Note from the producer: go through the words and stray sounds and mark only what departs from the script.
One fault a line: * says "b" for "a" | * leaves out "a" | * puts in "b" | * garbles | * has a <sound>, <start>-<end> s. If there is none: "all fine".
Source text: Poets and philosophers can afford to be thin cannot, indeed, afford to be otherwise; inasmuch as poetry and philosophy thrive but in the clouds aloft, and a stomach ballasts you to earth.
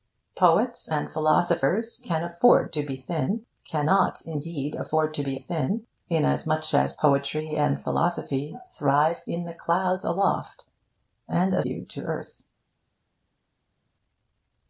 * says "thin" for "otherwise"
* leaves out "but"
* leaves out "stomach ballasts"